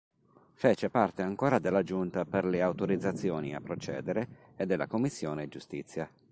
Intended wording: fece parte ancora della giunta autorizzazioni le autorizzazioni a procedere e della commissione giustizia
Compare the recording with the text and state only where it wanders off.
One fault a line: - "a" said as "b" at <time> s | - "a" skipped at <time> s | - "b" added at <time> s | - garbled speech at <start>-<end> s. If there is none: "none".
- "autorizzazioni" said as "per" at 2.2 s